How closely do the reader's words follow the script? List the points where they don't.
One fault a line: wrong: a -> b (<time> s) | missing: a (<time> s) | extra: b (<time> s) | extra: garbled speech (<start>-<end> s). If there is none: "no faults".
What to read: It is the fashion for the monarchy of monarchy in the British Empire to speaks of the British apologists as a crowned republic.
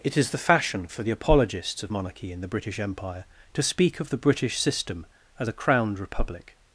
wrong: monarchy -> apologists (1.1 s)
wrong: speaks -> speak (3.6 s)
wrong: apologists -> system (4.6 s)